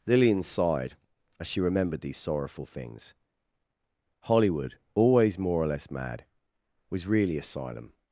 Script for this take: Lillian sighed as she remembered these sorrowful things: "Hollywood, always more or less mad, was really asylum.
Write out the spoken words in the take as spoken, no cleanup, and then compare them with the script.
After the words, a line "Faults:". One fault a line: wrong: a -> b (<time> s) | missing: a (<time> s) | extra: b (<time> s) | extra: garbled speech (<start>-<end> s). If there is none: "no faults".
Lillian sighed as she remembered these sorrowful things: "Hollywood, always more or less mad, was really asylum.
Faults:
no faults